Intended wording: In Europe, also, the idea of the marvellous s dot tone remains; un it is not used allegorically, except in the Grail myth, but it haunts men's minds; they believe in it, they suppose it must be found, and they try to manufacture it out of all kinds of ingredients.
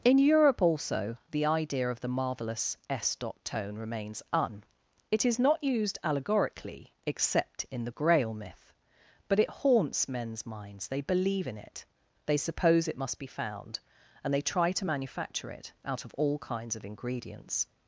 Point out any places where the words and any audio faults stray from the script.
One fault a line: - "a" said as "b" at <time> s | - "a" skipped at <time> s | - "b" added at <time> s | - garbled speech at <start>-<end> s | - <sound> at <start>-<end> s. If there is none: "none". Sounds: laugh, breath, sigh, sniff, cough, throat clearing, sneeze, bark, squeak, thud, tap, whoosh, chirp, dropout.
none